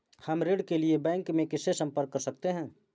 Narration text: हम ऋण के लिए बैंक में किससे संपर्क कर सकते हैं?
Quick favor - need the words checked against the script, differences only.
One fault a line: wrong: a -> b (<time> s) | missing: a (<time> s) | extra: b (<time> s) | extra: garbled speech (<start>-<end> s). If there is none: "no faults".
no faults